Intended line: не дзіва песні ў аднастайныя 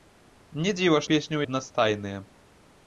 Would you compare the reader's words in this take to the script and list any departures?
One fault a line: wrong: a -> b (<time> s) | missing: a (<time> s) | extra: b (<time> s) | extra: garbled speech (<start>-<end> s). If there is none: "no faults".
no faults